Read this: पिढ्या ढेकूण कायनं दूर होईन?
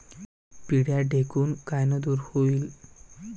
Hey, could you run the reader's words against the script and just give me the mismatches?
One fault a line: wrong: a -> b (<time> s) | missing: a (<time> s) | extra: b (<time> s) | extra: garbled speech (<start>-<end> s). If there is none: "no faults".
no faults